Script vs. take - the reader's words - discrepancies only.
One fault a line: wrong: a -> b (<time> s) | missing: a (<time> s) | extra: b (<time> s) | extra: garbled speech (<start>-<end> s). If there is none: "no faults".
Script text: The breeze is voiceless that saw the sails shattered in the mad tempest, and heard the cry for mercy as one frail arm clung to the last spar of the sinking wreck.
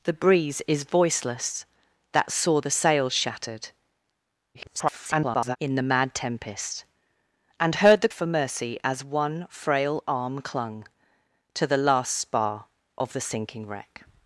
extra: garbled speech (4.5-5.6 s)
missing: cry (8.1 s)